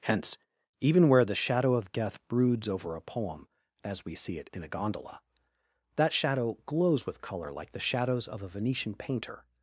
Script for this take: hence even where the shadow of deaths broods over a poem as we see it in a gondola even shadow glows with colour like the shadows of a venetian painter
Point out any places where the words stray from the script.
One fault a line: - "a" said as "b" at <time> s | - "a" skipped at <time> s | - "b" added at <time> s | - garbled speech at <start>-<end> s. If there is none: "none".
- "deaths" said as "death" at 1.9 s
- "even" said as "that" at 6.0 s